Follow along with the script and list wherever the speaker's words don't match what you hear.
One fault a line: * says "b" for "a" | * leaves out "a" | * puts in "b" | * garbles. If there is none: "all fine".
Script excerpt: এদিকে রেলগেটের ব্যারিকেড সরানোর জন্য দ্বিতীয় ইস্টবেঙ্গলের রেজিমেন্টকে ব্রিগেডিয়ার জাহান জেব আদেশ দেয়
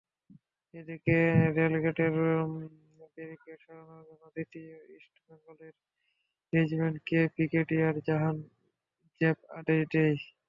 all fine